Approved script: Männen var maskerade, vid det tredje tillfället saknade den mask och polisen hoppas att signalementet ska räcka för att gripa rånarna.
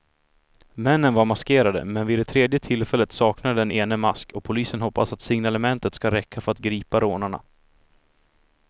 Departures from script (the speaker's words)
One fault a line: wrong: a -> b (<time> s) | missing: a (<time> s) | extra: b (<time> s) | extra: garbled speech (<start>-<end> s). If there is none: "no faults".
extra: men (1.9 s)
extra: ene (3.7 s)